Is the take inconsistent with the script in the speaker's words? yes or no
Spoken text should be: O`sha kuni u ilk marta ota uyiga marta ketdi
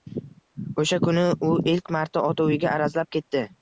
yes